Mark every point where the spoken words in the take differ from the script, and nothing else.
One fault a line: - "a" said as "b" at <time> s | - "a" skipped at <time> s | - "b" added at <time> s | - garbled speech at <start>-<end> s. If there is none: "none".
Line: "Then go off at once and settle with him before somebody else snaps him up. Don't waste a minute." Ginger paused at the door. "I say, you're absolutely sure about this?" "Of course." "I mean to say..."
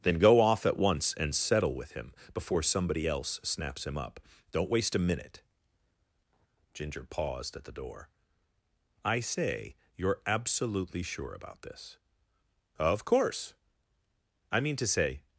none